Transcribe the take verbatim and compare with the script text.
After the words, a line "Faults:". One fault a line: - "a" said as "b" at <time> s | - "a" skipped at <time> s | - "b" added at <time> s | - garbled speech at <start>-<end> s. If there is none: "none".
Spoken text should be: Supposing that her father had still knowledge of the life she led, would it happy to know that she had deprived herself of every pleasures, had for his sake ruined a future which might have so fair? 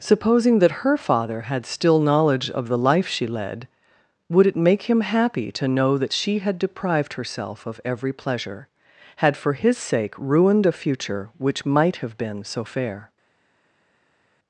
Supposing that her father had still knowledge of the life she led, would it make him happy to know that she had deprived herself of every pleasure, had for his sake ruined a future which might have been so fair?
Faults:
- "make him" added at 4.5 s
- "pleasures" said as "pleasure" at 8.1 s
- "been" added at 12.2 s